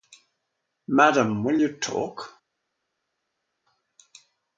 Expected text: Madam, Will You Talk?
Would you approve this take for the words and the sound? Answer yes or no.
yes